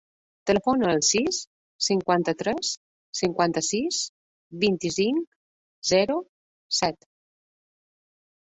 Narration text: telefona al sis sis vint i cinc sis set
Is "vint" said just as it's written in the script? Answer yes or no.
yes